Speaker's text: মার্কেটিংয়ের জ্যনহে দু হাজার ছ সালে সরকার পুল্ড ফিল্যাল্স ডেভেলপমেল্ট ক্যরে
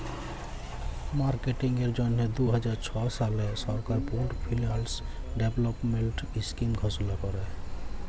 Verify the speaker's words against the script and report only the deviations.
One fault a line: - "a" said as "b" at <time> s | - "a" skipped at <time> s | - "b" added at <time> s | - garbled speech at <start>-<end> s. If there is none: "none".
- "ইস্কিম ঘষলা" added at 6.4 s